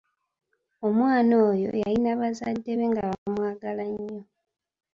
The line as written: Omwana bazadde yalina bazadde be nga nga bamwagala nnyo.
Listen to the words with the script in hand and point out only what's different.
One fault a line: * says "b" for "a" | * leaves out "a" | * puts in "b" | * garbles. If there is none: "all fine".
* says "oyo" for "bazadde"
* leaves out "nga"